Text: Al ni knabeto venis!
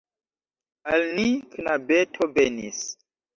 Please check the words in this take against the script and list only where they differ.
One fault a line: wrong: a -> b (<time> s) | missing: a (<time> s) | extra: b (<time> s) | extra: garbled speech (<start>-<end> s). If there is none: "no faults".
no faults